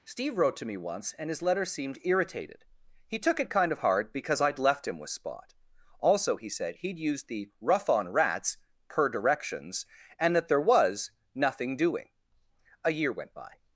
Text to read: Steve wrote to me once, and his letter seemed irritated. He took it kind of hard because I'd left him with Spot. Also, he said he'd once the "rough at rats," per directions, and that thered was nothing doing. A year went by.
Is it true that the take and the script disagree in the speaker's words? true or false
true